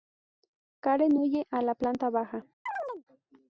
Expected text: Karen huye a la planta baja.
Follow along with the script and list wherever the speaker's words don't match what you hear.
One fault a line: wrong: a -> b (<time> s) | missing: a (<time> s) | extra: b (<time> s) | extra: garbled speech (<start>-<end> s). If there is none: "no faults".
no faults